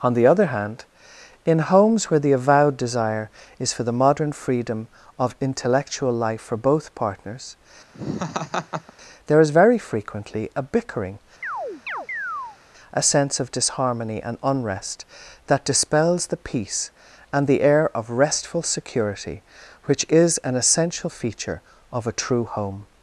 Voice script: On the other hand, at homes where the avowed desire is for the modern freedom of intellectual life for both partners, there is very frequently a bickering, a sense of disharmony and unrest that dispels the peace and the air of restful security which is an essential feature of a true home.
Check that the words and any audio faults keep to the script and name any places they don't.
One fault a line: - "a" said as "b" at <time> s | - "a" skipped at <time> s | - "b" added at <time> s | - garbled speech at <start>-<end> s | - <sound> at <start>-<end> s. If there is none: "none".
- "at" said as "in" at 1.4 s
- laugh at 7.9-8.9 s
- chirp at 11.4-12.6 s